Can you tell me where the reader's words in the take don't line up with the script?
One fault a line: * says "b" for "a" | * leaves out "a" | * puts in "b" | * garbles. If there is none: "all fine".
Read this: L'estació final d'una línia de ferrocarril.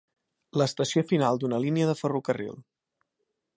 all fine